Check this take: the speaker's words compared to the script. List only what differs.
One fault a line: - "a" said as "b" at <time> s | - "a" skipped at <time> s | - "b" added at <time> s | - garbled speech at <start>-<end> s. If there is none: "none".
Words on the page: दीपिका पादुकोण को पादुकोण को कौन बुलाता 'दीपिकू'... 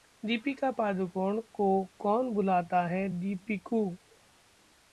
- "पादुकोण को" skipped at 1.7 s
- "है" added at 2.9 s